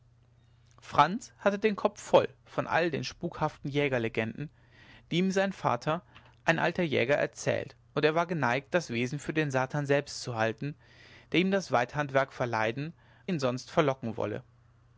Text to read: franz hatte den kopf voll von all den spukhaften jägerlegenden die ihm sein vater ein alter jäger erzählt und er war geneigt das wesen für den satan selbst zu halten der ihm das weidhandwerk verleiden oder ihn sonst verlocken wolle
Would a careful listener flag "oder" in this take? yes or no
yes